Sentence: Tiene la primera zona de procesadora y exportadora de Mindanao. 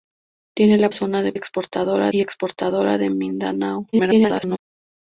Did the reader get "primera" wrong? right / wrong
wrong